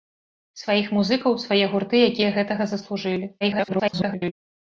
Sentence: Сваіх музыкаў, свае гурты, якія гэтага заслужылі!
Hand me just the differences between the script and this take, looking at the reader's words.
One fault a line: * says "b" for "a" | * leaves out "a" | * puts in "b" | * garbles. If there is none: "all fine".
* garbles